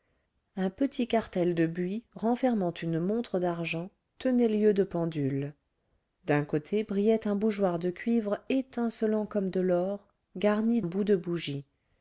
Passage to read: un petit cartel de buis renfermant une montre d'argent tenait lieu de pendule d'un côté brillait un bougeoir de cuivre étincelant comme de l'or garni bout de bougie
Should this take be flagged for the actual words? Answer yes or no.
no